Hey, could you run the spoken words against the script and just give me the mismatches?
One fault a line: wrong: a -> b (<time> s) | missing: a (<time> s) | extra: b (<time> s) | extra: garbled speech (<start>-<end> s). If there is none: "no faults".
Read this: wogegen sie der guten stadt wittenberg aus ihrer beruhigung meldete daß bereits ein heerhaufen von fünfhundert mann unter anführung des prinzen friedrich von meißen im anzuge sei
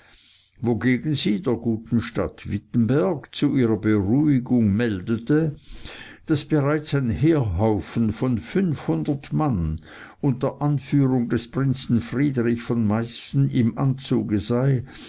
wrong: aus -> zu (3.4 s)